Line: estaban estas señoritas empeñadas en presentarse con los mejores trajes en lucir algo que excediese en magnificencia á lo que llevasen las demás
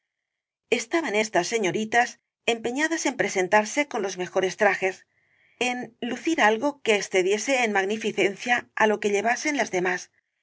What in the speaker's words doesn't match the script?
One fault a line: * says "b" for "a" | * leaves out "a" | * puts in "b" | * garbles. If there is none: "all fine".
all fine